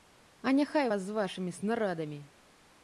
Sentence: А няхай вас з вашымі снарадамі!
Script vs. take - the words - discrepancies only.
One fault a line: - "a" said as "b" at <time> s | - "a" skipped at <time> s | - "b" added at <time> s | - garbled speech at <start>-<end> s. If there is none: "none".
none